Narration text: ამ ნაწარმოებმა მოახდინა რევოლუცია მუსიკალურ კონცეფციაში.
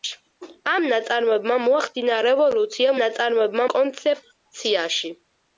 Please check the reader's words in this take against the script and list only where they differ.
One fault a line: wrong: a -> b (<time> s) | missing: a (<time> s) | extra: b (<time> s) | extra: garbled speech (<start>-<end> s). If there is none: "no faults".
wrong: მუსიკალურ -> ნაწარმოებმა (3.0 s)